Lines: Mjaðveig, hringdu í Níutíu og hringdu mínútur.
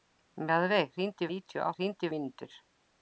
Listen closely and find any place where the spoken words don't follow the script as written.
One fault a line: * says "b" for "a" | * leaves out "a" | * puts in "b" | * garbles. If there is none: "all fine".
all fine